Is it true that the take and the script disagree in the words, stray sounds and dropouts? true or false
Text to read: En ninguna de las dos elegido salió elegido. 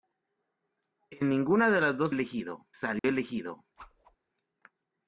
true